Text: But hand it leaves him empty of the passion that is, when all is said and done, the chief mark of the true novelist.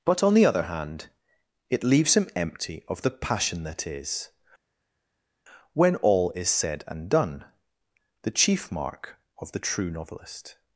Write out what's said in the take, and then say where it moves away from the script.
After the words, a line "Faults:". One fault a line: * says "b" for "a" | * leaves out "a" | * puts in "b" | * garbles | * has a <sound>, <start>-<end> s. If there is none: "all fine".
But on the other hand it leaves him empty of the passion that is, when all is said and done, the chief mark of the true novelist.
Faults:
* puts in "on the other"